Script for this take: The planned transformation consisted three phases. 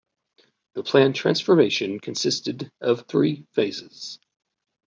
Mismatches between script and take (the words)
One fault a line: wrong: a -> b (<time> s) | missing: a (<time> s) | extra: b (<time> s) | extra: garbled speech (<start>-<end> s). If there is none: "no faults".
extra: of (2.8 s)